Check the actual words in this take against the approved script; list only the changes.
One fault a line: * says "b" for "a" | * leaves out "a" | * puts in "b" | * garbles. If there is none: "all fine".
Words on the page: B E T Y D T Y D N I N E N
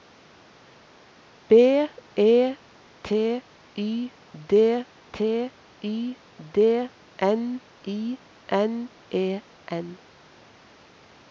all fine